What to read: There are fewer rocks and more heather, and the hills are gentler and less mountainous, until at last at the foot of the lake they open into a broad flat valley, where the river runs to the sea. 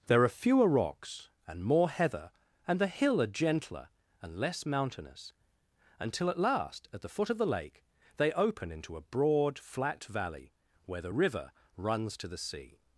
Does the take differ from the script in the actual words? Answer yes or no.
yes